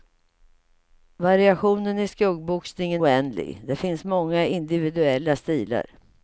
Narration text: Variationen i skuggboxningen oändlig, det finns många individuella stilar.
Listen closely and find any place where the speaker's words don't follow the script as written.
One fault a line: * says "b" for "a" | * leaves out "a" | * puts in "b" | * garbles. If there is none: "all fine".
all fine